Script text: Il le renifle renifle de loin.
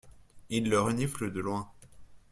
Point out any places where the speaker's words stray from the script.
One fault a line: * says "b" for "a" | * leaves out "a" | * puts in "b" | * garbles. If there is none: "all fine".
* leaves out "renifle"